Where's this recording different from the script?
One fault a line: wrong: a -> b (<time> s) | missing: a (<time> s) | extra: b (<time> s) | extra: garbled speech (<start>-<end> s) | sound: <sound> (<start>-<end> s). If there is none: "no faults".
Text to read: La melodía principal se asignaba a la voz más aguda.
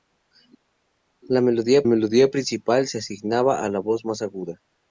extra: melodía (1.8 s)